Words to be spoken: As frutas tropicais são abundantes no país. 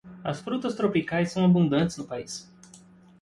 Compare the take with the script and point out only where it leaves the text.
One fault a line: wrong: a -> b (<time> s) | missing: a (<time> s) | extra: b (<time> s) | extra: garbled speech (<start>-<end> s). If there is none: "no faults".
no faults